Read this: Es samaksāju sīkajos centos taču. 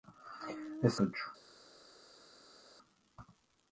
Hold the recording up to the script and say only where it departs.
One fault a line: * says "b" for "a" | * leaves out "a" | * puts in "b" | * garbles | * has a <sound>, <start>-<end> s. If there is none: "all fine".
* leaves out "samaksāju sīkajos centos"